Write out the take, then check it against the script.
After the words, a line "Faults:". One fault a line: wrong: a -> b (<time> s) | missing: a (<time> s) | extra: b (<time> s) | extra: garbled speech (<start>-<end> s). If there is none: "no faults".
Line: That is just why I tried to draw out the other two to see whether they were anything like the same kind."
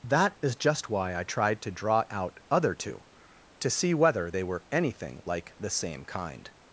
That is just why I tried to draw out other two to see whether they were anything like the same kind."
Faults:
missing: the (2.4 s)